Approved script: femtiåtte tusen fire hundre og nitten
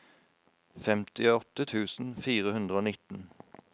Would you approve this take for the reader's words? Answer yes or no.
yes